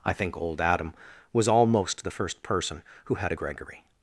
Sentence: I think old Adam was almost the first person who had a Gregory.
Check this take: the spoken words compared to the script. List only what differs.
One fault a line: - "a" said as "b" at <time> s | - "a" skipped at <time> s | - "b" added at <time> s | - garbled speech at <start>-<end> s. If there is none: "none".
none